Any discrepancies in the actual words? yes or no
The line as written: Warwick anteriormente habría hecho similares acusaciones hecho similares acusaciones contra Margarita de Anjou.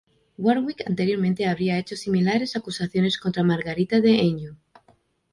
yes